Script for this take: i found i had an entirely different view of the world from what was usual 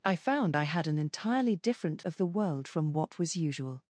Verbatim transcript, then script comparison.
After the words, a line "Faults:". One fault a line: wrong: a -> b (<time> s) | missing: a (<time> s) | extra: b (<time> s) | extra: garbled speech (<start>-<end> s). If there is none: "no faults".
i found i had an entirely different of the world from what was usual
Faults:
missing: view (2.0 s)